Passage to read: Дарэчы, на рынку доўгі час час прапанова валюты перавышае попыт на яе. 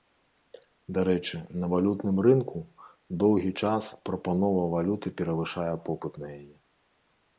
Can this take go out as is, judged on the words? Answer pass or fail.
fail